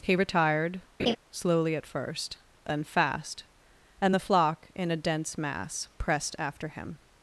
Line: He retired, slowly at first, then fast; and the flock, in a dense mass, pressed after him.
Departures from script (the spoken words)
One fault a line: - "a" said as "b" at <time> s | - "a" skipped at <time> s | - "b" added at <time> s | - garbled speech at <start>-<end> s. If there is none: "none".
none